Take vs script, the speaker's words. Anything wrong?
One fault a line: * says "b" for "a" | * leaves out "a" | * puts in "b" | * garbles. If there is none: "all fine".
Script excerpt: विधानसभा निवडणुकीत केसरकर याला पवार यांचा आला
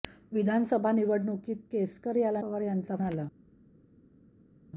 all fine